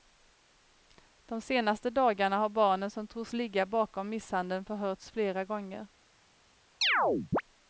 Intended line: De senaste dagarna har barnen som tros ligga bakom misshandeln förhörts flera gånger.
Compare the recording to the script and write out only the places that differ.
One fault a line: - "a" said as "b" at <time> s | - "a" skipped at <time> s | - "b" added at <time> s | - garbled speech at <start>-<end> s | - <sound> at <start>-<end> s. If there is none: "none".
- chirp at 6.8-7.4 s